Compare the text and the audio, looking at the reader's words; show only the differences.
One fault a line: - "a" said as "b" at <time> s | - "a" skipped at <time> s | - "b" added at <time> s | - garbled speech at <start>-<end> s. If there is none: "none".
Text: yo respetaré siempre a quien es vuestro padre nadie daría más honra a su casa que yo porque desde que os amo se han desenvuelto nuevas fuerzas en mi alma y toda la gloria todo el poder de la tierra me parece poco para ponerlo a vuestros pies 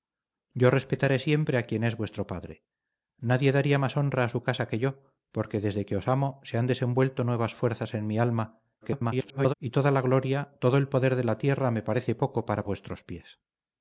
- garbled speech at 8.8-9.5 s
- "ponerlo" skipped at 12.6 s